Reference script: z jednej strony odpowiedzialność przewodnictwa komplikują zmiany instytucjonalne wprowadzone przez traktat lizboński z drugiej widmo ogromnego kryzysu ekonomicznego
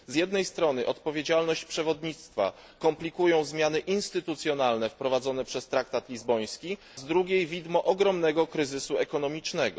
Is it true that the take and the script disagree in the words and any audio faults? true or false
false